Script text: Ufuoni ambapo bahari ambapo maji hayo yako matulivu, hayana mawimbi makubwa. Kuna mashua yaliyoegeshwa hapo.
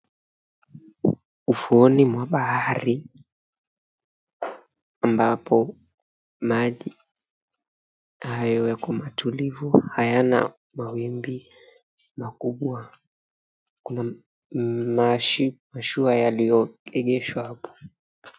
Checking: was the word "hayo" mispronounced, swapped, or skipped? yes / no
no